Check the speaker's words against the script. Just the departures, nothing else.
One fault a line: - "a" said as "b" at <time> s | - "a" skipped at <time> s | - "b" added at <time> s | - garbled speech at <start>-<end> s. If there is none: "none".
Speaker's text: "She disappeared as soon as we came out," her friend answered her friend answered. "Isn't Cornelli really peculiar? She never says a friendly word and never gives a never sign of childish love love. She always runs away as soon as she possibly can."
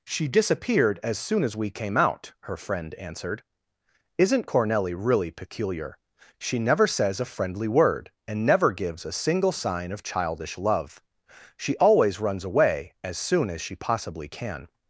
- "her friend answered" skipped at 3.4 s
- "never" said as "single" at 9.1 s
- "love" skipped at 11.0 s